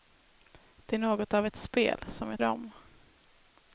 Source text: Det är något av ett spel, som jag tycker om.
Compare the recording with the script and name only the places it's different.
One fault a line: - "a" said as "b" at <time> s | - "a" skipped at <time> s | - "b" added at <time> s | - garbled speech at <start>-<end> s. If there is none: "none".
- "tycker" skipped at 2.4 s